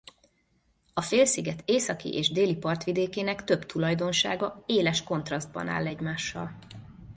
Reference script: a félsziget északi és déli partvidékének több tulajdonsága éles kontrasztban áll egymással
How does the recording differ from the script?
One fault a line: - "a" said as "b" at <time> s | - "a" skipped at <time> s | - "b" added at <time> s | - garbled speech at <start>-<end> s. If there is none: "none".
none